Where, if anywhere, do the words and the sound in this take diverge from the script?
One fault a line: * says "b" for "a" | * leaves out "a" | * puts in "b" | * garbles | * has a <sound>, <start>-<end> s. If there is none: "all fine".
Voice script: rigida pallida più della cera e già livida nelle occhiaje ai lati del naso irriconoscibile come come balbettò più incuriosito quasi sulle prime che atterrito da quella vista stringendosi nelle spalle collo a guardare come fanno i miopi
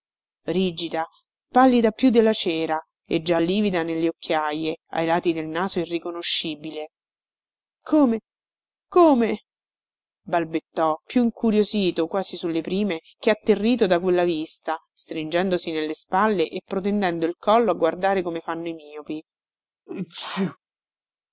* puts in "e protendendo il"
* has a sneeze, 19.9-20.6 s